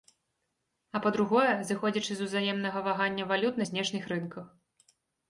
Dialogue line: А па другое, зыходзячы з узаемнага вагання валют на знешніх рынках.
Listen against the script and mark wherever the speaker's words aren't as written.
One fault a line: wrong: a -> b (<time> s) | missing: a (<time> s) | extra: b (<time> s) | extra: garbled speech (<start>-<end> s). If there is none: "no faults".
no faults